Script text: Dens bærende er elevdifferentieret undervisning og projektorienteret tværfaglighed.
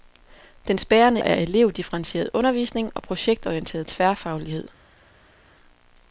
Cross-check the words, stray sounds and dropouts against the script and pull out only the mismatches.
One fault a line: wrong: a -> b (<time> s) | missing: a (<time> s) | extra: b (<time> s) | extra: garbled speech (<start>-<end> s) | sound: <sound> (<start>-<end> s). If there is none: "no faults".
no faults